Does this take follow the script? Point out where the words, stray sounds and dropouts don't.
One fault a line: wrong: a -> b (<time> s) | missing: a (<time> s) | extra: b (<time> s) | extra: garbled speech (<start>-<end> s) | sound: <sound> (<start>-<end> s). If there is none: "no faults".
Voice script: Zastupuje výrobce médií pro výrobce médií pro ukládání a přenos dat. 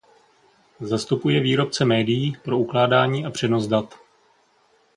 missing: výrobce médií pro (2.6 s)